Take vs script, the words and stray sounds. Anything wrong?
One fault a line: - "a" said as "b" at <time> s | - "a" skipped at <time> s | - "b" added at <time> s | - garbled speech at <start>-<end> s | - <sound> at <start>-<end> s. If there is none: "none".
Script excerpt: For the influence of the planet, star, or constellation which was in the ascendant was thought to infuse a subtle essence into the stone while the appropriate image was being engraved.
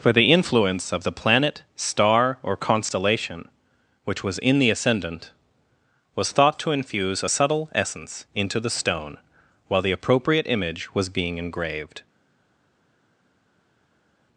none